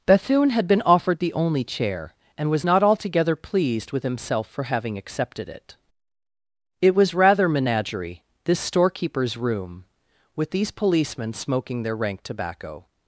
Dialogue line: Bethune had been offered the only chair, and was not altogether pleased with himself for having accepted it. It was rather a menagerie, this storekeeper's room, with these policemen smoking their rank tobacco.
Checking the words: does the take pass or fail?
fail